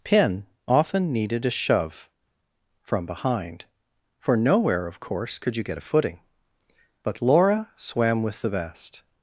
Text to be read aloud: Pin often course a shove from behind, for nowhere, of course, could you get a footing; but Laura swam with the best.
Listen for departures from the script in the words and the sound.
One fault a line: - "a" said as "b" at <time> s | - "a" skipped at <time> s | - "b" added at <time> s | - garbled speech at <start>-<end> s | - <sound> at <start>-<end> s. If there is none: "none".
- "course" said as "needed" at 1.1 s